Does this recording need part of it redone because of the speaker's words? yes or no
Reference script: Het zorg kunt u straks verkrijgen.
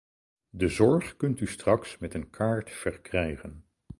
yes